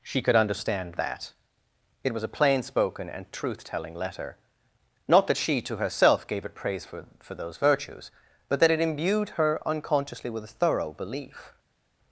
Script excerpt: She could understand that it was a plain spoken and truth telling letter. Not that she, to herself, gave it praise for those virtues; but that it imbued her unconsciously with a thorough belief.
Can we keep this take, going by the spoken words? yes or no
no